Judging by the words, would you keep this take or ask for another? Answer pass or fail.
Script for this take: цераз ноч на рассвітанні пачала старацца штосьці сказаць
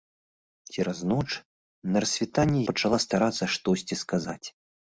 pass